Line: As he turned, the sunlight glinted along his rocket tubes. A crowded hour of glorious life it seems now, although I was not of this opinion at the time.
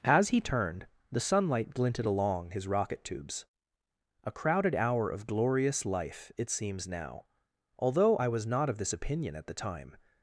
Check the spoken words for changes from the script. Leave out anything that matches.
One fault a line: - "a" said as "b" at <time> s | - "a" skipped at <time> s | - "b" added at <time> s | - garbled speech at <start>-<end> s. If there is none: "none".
none